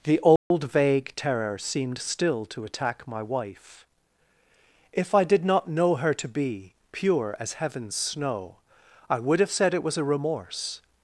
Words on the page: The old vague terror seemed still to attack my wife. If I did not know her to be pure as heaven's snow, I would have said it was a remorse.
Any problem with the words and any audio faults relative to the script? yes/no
yes